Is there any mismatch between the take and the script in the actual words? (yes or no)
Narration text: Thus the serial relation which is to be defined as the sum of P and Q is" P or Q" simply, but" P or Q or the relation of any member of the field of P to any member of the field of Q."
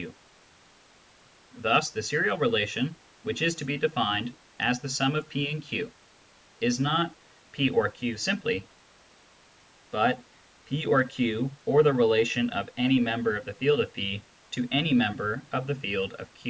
yes